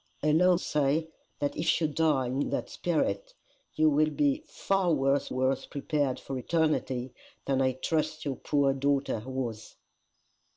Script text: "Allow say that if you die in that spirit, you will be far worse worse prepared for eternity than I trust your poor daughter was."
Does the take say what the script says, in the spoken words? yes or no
yes